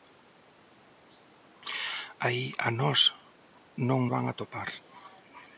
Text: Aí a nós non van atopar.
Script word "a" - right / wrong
right